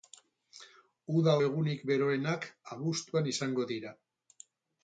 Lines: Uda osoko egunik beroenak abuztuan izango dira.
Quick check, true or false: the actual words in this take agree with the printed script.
false